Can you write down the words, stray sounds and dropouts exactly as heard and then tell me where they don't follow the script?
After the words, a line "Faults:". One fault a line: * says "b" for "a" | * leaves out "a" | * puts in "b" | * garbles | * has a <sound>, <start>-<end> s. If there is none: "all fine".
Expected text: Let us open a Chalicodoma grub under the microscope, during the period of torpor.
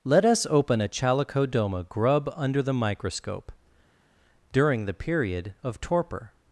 Let us open a Chalicodoma grub under the microscope, during the period of torpor.
Faults:
all fine